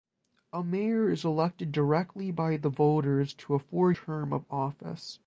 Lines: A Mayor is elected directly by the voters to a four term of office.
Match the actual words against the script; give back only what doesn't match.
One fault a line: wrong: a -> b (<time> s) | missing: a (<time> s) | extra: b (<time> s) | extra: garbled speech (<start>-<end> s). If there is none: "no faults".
no faults